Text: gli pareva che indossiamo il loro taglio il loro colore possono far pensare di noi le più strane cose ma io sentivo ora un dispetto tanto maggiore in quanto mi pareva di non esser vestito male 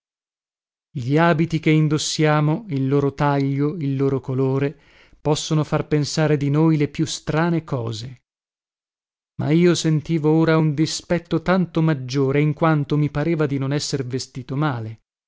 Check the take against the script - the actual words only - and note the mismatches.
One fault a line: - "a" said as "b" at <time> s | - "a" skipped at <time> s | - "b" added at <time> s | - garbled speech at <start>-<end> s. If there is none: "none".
- "pareva" said as "abiti" at 1.1 s